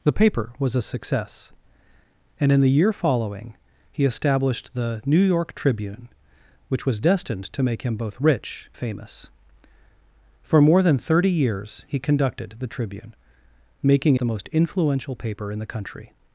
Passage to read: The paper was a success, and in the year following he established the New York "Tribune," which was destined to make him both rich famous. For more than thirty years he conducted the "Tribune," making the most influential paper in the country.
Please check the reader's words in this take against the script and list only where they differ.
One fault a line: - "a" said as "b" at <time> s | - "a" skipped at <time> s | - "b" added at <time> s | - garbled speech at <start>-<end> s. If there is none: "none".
none